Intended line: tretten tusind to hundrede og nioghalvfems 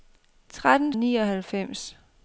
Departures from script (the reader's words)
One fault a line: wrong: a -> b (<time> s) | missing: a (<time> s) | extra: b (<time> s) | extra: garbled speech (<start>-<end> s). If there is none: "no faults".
missing: tusind to hundrede (0.9 s)